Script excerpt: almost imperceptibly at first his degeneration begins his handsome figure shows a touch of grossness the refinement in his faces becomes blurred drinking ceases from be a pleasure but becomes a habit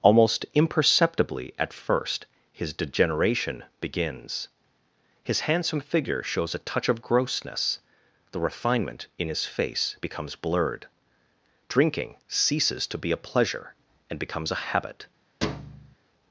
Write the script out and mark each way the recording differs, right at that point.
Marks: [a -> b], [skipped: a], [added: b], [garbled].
almost imperceptibly at first his degeneration begins his handsome figure shows a touch of grossness the refinement in his [faces -> face] becomes blurred drinking ceases [from -> to] be a pleasure [but -> and] becomes a habit